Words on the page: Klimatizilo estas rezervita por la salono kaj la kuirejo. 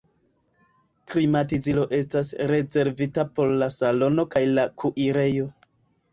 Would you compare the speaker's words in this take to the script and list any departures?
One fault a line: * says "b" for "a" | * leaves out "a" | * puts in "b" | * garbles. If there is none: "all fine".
all fine